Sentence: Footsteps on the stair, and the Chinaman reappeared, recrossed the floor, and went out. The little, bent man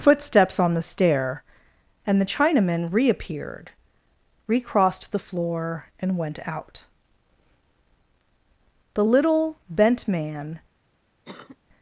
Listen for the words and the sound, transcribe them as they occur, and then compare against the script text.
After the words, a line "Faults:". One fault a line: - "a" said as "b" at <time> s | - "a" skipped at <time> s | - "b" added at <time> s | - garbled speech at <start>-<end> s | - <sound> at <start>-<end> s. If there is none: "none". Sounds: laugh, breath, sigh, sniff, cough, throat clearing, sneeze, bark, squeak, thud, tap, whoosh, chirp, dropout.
Footsteps on the stair, and the Chinaman reappeared, recrossed the floor, and went out. The little, bent man
Faults:
- cough at 11.2-11.6 s